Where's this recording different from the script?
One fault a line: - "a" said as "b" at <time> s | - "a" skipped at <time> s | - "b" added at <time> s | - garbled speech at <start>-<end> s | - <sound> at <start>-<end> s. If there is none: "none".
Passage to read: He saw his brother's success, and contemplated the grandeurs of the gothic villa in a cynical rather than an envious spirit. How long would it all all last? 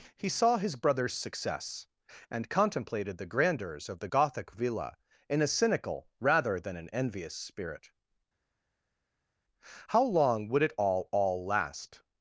none